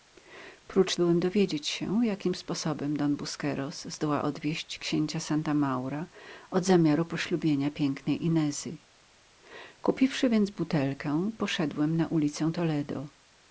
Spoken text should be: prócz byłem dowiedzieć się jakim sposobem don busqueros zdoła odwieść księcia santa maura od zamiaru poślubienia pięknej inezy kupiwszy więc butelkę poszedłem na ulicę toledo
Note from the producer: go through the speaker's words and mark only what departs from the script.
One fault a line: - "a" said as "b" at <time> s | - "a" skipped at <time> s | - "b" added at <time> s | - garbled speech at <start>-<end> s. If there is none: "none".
none